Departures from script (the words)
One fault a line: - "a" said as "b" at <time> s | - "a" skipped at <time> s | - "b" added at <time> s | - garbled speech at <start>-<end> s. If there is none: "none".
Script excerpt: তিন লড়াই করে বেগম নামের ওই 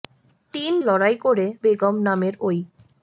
none